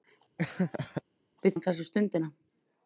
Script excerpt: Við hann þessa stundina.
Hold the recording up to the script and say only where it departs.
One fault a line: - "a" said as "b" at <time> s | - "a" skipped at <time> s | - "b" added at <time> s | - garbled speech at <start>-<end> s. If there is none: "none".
none